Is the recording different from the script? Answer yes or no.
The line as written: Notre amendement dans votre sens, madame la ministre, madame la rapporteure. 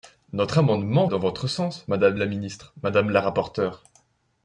no